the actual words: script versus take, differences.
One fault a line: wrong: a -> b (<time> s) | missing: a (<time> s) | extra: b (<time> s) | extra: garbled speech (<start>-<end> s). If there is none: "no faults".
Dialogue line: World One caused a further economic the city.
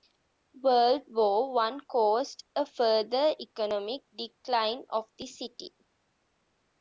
extra: War (1.1 s)
extra: decline of (4.2 s)